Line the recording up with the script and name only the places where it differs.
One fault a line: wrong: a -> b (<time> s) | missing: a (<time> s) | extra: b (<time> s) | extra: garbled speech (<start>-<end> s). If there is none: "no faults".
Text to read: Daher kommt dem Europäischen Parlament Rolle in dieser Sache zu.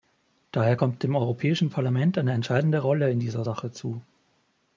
extra: eine entscheidende (2.2 s)